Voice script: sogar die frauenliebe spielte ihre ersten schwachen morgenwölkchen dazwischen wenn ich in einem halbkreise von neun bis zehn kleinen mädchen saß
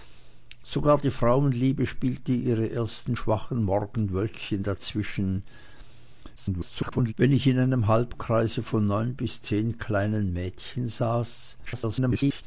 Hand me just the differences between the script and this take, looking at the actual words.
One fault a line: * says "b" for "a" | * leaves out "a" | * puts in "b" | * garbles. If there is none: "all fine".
* garbles
* garbles